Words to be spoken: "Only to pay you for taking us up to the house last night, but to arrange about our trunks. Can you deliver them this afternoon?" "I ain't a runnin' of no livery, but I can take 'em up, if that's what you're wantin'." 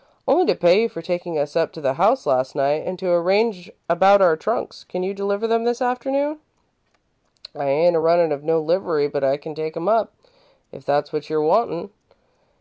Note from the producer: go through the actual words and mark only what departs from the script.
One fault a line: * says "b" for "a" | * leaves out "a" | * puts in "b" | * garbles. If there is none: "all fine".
* says "and" for "but"